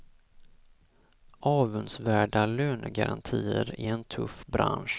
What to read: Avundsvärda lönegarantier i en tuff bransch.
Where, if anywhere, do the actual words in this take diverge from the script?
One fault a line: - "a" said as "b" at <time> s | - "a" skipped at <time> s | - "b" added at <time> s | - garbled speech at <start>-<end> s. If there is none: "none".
none